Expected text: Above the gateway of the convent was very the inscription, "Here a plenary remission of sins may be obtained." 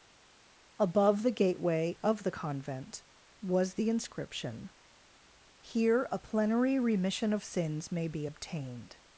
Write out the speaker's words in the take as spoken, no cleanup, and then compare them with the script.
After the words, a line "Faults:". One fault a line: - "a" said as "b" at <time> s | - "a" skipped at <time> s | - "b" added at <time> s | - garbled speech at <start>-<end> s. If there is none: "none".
Above the gateway of the convent was the inscription, "Here a plenary remission of sins may be obtained."
Faults:
- "very" skipped at 3.7 s